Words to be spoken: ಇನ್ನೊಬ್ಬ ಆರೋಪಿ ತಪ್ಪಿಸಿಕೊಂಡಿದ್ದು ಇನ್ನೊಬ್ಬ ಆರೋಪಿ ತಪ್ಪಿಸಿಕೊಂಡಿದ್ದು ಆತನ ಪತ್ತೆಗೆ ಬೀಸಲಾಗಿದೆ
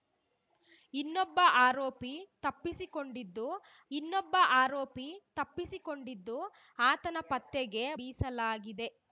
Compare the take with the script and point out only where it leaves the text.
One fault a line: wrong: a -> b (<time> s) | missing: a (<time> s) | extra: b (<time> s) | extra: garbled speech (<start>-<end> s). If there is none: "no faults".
no faults